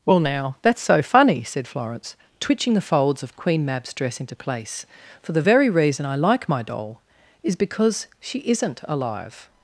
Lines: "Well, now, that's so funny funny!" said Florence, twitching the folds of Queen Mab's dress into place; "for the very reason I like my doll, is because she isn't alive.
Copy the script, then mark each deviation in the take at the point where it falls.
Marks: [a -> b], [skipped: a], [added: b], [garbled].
"Well, now, that's so funny [skipped: funny!"] said Florence, twitching the folds of Queen Mab's dress into place; "for the very reason I like my doll, is because she isn't alive.